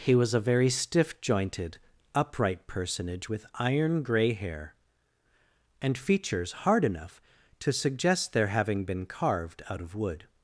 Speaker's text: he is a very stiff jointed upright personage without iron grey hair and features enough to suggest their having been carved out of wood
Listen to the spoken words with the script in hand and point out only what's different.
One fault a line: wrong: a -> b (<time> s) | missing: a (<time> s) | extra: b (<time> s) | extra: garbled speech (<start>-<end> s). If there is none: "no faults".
wrong: is -> was (0.1 s)
wrong: without -> with (3.3 s)
extra: hard (6.6 s)